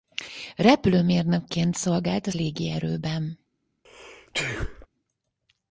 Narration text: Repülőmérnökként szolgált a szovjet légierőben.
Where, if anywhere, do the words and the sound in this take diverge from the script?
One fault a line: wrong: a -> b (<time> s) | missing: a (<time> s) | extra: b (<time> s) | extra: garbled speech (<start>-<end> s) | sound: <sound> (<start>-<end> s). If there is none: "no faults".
missing: szovjet (2.3 s)
sound: sneeze (3.8-4.9 s)